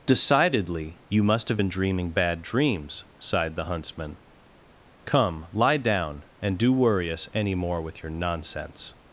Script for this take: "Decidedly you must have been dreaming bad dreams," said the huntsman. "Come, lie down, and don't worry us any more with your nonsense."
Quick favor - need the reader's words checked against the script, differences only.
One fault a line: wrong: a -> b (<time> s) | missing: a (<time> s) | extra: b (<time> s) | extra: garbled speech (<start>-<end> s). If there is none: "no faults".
wrong: said -> sighed (3.2 s)
wrong: don't -> do (6.6 s)